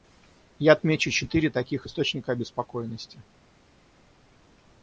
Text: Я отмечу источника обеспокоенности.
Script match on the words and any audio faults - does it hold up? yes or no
no